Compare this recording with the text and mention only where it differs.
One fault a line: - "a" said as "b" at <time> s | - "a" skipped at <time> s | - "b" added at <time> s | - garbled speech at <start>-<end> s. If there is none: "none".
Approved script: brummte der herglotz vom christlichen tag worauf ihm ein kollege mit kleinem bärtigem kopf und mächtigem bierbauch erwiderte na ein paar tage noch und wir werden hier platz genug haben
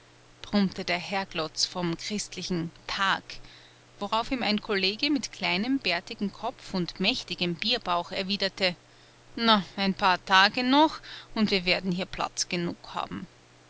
none